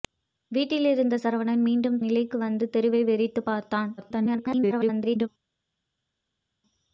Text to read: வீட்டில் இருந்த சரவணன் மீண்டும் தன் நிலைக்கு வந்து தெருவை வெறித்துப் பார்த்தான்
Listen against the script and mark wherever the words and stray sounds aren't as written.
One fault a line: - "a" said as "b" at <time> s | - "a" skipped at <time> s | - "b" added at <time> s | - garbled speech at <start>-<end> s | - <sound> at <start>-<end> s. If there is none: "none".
- "தன்" skipped at 2.0 s
- garbled speech at 4.0-5.3 s